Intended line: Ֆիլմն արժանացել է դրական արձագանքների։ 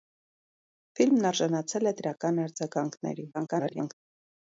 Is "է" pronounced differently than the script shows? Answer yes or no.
no